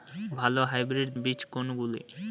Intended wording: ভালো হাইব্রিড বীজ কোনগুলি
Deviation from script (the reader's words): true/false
false